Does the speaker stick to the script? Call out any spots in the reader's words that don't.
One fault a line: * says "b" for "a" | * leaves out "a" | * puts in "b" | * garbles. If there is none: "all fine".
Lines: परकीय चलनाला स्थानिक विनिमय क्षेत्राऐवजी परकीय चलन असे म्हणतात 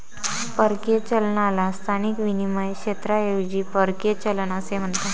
all fine